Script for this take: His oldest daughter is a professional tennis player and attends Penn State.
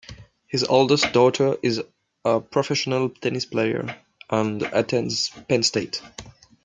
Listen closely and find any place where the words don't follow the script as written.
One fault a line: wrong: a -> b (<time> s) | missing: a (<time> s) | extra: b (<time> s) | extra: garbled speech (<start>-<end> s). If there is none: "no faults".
no faults